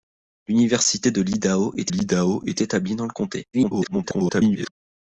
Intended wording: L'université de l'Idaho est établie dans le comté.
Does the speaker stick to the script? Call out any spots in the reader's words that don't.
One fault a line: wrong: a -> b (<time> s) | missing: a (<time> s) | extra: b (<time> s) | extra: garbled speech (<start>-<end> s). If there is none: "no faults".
extra: l'Idaho est (1.9 s)
extra: garbled speech (3.5-4.7 s)